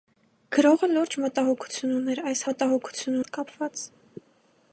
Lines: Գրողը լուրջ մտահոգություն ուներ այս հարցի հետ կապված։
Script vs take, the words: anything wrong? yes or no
yes